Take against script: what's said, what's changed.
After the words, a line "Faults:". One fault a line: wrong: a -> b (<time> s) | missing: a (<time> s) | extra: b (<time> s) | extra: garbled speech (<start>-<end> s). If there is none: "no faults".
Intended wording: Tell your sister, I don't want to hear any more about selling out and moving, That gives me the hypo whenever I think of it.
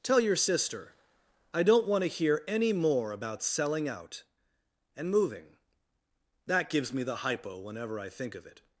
Tell your sister, I don't want to hear any more about selling out and moving, That gives me the hypo whenever I think of it.
Faults:
no faults